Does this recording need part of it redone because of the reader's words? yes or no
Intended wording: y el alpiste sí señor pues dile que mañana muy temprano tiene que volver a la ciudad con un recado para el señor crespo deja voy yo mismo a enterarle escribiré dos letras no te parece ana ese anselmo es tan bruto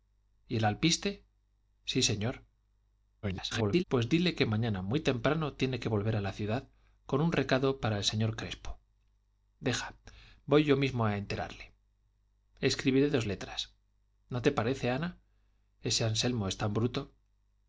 yes